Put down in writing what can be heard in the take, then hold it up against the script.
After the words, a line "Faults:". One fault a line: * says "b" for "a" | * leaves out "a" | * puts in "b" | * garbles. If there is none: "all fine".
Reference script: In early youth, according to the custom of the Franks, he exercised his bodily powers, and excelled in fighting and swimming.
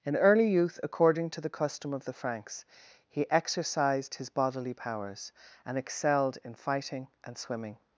In early youth, according to the custom of the Franks, he exercised his bodily powers, and excelled in fighting and swimming.
Faults:
all fine